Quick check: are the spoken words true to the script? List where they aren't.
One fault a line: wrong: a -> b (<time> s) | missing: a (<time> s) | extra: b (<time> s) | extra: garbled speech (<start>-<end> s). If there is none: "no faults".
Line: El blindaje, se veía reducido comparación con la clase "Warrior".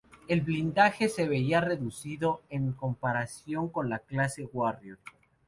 extra: en (2.5 s)